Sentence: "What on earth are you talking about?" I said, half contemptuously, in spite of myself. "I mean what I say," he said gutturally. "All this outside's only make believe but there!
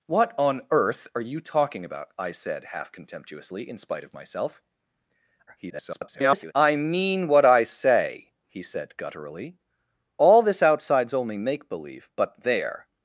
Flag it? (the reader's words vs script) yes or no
yes